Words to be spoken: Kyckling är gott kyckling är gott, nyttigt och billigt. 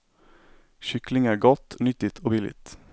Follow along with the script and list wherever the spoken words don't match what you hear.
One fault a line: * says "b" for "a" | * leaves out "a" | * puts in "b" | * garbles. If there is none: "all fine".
* leaves out "kyckling är gott"